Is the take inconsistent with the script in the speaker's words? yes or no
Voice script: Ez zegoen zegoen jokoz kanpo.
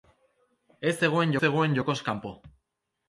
no